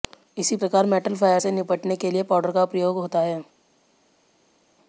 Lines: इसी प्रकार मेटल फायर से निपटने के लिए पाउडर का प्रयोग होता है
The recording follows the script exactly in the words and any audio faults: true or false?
true